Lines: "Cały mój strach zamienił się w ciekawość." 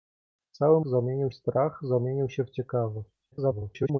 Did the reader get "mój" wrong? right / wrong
wrong